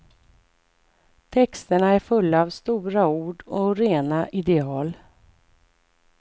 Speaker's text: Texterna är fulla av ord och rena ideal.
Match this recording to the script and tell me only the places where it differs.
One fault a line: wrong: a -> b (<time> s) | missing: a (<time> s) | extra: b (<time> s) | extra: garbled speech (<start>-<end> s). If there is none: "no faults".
extra: stora (2.5 s)